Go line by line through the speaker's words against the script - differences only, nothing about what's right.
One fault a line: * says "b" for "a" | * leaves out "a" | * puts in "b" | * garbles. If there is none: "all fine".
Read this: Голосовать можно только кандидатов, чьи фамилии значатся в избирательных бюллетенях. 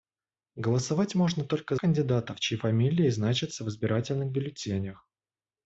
all fine